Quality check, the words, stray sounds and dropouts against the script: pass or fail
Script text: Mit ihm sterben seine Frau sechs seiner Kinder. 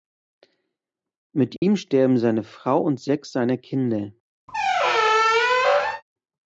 fail